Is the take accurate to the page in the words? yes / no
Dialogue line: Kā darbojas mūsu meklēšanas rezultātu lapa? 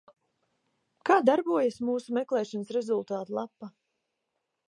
yes